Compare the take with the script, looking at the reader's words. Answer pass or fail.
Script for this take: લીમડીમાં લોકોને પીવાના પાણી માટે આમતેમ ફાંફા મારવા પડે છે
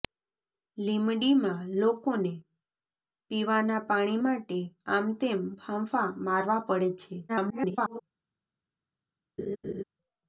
fail